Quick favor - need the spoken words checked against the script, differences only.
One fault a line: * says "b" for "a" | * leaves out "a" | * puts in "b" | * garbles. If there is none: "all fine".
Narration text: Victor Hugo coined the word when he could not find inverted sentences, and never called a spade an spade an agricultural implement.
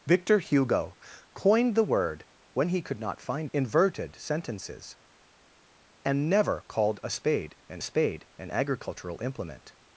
all fine